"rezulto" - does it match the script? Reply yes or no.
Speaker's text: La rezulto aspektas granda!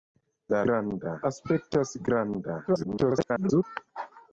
no